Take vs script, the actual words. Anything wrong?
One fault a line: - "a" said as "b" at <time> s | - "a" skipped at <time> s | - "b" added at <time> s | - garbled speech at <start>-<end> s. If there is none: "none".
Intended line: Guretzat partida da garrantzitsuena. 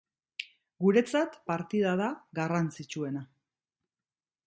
none